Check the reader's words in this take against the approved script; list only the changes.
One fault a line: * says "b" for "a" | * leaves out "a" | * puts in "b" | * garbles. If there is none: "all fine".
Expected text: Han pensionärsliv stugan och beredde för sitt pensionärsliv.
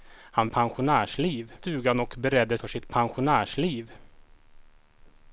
all fine